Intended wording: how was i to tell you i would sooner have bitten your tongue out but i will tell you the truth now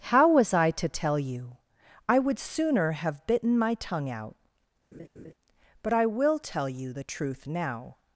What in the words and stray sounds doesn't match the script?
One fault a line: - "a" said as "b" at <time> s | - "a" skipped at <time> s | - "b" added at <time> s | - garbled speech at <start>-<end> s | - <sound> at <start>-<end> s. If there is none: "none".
- "your" said as "my" at 3.6 s
- laugh at 4.9-5.3 s